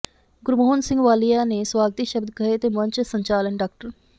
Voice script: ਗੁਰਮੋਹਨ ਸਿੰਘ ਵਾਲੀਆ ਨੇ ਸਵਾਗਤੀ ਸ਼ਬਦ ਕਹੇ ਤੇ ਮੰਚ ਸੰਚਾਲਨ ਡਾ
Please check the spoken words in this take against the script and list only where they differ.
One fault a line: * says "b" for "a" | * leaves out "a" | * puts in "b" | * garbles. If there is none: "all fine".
all fine